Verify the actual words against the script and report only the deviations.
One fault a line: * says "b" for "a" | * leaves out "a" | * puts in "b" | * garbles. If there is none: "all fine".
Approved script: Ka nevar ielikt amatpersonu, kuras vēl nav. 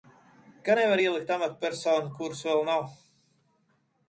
all fine